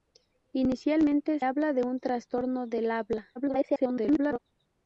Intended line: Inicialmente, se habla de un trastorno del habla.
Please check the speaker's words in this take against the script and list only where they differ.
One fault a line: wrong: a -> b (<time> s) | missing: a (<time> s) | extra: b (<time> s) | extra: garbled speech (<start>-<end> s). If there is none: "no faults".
missing: se (1.4 s)
extra: garbled speech (3.4-4.4 s)